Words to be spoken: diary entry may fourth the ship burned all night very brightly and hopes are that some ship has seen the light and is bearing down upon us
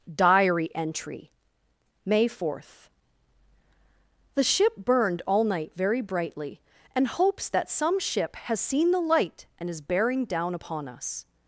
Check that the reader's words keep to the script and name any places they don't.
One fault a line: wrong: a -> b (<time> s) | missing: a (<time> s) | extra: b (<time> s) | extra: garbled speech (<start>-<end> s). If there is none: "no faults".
missing: are (7.5 s)